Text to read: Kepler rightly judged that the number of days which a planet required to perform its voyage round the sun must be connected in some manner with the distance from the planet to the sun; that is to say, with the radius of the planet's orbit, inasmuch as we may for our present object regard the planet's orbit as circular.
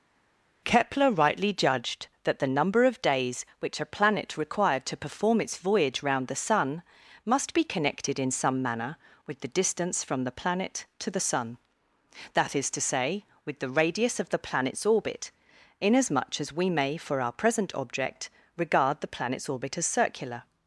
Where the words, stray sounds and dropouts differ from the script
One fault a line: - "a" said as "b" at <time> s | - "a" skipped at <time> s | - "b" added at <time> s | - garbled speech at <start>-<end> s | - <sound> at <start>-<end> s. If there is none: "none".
none